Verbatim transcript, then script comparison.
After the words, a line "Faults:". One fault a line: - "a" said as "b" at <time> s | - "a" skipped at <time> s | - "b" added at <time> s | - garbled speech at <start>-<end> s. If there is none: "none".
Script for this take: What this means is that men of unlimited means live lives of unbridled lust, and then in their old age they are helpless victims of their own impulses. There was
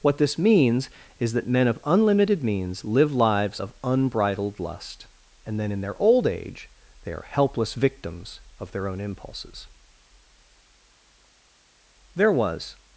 What this means is that men of unlimited means live lives of unbridled lust, and then in their old age they are helpless victims of their own impulses. There was
Faults:
none